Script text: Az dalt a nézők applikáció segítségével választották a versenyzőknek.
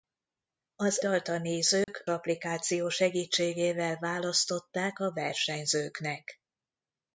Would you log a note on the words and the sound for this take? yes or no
yes